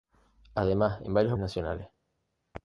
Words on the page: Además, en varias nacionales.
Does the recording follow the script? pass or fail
pass